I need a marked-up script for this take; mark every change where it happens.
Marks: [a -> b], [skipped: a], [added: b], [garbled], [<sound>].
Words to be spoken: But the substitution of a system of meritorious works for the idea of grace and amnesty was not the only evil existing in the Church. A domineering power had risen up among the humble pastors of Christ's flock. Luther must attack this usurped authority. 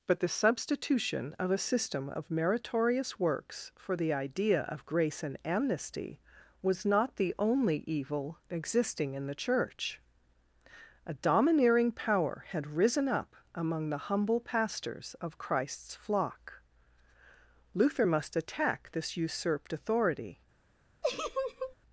But the substitution of a system of meritorious works for the idea of grace and amnesty was not the only evil existing in the Church. A domineering power had risen up among the humble pastors of Christ's flock. Luther must attack this usurped authority. [laugh]